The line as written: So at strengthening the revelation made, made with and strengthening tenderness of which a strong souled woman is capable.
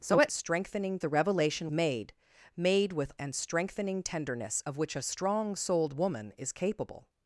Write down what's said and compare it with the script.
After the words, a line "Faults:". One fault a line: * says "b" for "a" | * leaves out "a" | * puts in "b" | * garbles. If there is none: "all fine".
So at strengthening the revelation made, made with and strengthening tenderness of which a strong souled woman is capable.
Faults:
all fine